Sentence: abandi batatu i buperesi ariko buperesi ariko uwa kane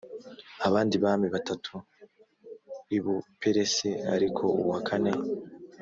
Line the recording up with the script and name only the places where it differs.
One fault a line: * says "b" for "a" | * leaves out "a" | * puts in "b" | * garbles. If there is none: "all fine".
* puts in "bami"
* leaves out "buperesi ariko"